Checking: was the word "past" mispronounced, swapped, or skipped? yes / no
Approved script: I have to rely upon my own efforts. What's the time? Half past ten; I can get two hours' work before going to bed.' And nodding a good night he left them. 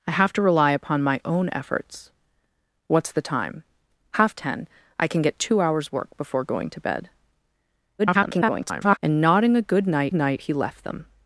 yes